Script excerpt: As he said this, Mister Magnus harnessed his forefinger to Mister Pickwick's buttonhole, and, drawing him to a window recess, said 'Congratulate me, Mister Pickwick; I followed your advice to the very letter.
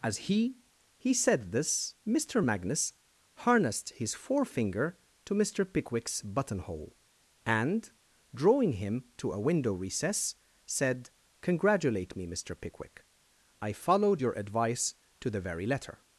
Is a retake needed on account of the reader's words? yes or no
yes